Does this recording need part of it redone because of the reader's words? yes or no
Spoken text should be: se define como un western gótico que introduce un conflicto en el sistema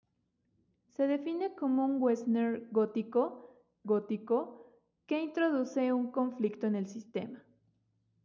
yes